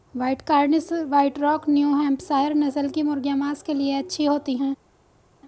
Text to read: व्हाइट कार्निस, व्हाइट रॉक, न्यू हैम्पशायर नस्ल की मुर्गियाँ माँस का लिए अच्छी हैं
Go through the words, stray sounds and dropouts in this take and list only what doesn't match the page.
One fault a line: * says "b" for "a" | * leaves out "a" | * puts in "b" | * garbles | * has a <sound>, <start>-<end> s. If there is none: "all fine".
* says "के" for "का"
* puts in "होती"